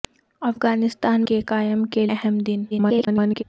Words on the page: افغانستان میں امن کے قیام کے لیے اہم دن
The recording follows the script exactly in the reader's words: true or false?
false